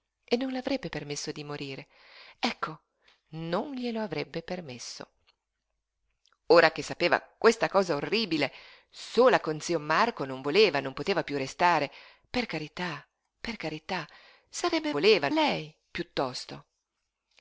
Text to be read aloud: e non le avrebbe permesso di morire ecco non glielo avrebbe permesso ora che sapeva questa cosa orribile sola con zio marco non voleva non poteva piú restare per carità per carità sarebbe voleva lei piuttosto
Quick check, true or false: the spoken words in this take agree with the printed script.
true